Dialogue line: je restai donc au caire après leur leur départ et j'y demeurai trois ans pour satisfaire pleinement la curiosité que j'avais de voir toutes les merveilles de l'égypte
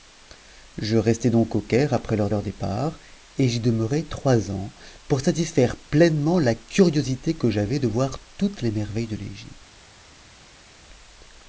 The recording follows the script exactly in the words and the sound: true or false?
true